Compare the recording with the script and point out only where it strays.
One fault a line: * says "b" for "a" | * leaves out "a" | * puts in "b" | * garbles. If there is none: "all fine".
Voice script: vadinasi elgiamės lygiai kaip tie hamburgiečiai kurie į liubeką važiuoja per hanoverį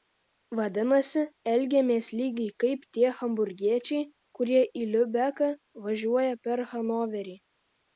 all fine